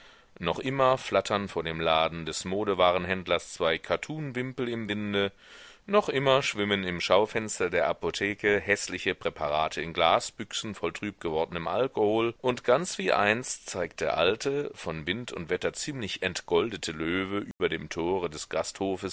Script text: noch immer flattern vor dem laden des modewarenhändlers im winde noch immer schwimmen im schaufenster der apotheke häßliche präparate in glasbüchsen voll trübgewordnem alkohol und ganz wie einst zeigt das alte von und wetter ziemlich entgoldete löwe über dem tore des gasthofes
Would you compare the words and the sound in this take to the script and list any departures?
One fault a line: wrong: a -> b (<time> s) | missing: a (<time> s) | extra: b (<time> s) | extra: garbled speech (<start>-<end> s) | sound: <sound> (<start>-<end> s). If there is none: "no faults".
extra: zwei kattunwimpel (3.5 s)
wrong: das -> der (14.0 s)
extra: wind (15.1 s)
sound: dropout (17.5-17.6 s)